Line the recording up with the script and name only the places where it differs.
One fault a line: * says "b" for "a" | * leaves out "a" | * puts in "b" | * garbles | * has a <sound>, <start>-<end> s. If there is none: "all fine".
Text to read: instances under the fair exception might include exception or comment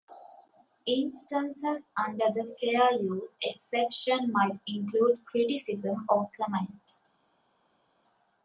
* puts in "use"
* says "criticism" for "exception"